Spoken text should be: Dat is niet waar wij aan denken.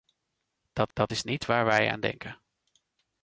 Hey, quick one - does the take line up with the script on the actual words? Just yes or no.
no